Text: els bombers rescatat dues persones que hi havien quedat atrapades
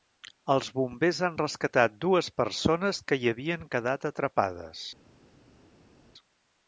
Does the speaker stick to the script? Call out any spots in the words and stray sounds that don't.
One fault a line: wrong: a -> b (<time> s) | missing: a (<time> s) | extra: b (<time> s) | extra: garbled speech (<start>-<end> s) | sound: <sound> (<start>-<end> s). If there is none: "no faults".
extra: han (1.3 s)